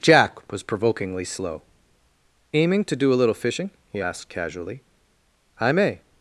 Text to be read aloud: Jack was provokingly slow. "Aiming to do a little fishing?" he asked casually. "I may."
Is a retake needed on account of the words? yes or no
no